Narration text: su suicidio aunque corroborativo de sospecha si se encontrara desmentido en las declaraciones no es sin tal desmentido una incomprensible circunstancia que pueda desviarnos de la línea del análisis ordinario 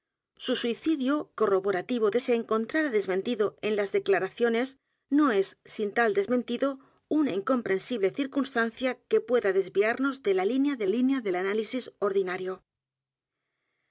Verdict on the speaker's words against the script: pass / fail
fail